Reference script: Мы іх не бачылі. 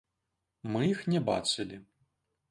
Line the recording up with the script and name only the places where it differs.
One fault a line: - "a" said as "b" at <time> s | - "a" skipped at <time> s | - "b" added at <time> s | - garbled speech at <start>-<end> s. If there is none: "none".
none